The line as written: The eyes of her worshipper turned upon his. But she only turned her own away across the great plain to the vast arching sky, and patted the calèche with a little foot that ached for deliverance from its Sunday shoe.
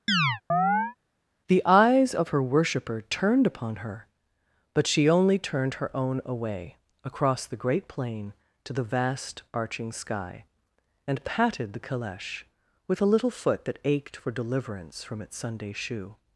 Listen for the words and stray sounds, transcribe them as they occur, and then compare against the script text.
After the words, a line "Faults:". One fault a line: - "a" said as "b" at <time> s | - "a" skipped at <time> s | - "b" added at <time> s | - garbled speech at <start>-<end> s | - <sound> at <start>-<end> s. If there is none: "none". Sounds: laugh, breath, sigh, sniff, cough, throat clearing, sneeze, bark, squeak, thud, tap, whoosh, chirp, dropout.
The eyes of her worshipper turned upon her. But she only turned her own away across the great plain to the vast arching sky, and patted the calèche with a little foot that ached for deliverance from its Sunday shoe.
Faults:
- chirp at 0.1-1.0 s
- "his" said as "her" at 3.8 s